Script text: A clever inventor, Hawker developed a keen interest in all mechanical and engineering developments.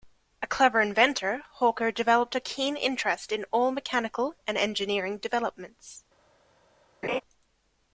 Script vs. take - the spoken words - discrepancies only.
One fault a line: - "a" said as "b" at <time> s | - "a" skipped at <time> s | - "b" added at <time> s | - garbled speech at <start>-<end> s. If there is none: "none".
none